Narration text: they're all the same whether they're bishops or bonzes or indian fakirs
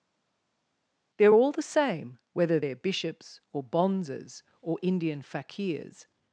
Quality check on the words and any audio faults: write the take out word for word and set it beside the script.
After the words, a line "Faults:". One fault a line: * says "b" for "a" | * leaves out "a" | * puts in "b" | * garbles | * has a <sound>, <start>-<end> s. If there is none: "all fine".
they're all the same whether they're bishops or bonzes or indian fakirs
Faults:
all fine